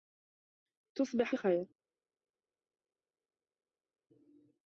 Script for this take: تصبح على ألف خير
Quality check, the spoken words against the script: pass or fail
fail